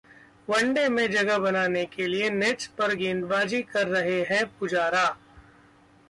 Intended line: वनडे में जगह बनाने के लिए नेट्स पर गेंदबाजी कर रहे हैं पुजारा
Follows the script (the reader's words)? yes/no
yes